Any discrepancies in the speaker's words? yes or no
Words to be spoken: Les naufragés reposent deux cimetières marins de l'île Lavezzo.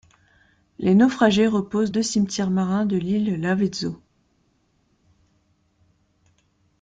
no